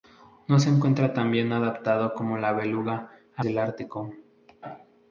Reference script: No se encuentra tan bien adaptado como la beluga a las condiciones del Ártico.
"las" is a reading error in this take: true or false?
true